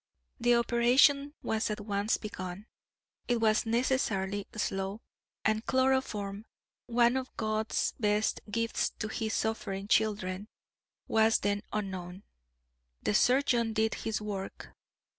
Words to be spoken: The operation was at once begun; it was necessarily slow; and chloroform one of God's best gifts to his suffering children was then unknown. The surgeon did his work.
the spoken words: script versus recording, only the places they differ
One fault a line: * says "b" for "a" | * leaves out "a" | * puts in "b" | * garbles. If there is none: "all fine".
all fine